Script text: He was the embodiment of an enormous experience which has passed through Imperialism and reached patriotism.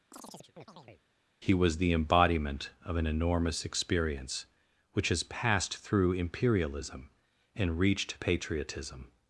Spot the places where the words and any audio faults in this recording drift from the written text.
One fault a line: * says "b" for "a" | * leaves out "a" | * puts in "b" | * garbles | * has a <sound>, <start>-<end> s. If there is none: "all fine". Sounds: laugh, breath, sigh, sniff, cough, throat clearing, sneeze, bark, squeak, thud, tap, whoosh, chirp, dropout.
* has a chirp, 0.1-1.0 s